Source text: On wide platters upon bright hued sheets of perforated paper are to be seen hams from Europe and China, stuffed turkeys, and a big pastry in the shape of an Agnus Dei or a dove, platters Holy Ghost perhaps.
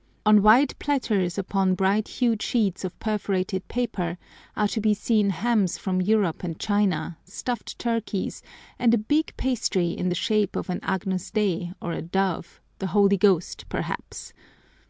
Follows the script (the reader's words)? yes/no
no